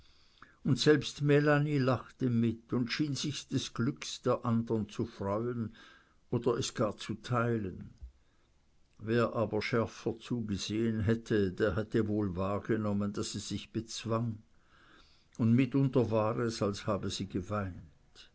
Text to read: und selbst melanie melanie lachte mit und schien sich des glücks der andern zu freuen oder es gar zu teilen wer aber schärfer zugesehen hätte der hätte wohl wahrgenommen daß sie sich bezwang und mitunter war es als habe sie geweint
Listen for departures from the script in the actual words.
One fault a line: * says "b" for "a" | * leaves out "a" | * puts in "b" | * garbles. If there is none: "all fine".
* leaves out "melanie"